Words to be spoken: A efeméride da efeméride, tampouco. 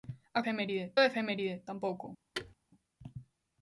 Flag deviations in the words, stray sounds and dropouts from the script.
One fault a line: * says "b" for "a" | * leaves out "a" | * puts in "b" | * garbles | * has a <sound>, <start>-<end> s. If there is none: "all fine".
* has a thud, 2.3-2.5 s